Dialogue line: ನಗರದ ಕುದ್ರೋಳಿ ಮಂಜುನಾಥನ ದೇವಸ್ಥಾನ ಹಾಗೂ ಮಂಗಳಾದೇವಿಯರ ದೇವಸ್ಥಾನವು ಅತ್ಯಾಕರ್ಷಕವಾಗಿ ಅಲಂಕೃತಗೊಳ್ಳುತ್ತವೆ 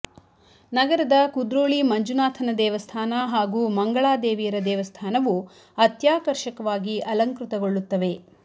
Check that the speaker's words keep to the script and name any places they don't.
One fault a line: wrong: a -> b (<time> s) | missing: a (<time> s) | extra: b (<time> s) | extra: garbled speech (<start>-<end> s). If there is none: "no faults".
no faults